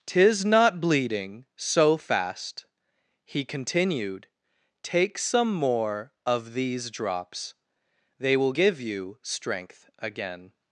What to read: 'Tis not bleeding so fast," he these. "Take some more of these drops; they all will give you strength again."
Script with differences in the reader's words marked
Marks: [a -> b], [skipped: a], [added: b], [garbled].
'Tis not bleeding so fast," he [these. -> continued] "Take some more of these drops; they [skipped: all] will give you strength again."